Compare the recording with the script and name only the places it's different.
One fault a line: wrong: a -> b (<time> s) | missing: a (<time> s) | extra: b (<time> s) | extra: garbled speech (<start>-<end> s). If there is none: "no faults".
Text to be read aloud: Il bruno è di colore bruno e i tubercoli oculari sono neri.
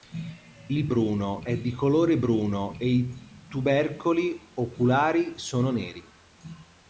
no faults